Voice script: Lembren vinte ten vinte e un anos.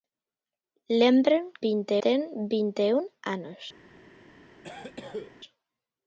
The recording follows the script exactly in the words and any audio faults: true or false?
false